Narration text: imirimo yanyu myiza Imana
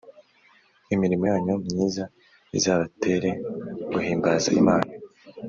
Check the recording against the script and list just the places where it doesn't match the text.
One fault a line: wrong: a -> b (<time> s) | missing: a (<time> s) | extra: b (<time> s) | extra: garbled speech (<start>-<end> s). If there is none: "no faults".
extra: izabatere guhimbaza (2.6 s)